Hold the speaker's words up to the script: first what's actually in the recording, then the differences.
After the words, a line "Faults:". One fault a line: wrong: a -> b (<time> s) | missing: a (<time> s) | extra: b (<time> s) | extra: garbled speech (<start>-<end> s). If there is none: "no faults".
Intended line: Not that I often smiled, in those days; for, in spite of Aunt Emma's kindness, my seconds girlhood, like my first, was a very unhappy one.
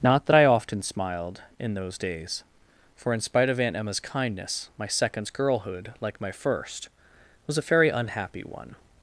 Not that I often smiled, in those days; for, in spite of Aunt Emma's kindness, my seconds girlhood, like my first, was a very unhappy one.
Faults:
no faults